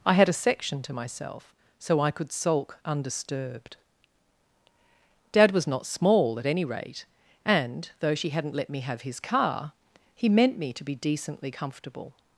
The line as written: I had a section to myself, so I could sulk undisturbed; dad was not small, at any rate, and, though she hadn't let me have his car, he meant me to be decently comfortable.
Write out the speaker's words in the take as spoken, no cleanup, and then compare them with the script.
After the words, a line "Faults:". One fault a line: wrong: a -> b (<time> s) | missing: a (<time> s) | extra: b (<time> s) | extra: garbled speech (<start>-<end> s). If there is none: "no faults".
I had a section to myself, so I could sulk undisturbed; dad was not small, at any rate, and, though she hadn't let me have his car, he meant me to be decently comfortable.
Faults:
no faults